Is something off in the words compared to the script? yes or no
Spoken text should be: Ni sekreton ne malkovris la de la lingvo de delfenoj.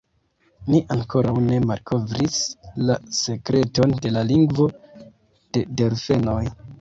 yes